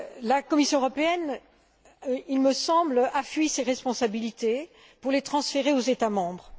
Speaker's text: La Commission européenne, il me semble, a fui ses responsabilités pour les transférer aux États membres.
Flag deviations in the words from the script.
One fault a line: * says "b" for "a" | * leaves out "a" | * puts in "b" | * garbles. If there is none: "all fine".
all fine